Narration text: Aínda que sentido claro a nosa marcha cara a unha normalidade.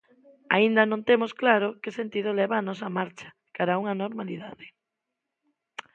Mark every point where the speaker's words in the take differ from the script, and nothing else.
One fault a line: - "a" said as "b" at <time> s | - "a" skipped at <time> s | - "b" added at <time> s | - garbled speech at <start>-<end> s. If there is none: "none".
- "non temos claro" added at 0.9 s
- "claro" said as "leva" at 2.4 s